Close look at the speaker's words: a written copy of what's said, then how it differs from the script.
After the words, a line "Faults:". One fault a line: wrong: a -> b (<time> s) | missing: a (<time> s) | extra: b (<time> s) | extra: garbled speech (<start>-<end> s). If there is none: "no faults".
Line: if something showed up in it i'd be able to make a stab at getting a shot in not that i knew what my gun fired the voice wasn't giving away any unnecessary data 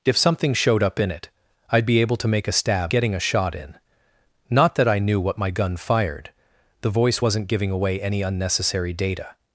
if something showed up in it i'd be able to make a stab getting a shot in not that i knew what my gun fired the voice wasn't giving away any unnecessary data
Faults:
missing: at (2.9 s)